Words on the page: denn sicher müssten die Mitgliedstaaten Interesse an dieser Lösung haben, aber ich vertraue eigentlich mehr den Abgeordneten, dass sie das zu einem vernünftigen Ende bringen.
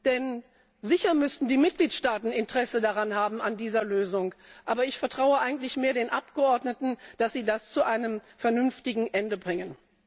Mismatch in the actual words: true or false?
false